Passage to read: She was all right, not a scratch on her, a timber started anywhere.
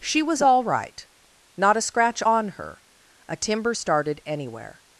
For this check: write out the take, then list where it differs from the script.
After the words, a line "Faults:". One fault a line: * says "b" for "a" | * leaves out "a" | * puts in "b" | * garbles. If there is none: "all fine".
She was all right, not a scratch on her, a timber started anywhere.
Faults:
all fine